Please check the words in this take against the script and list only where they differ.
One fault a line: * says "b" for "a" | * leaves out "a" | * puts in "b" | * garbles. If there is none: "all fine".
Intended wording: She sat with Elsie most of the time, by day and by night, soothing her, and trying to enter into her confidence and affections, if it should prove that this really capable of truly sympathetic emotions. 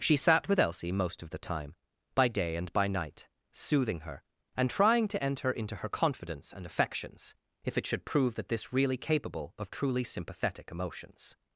all fine